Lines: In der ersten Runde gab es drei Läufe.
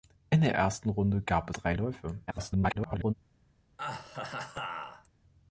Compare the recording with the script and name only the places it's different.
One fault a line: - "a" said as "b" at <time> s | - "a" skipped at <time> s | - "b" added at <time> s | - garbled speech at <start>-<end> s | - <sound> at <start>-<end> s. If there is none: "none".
- "es" skipped at 1.5 s
- garbled speech at 2.3-3.1 s
- laugh at 3.8-5.1 s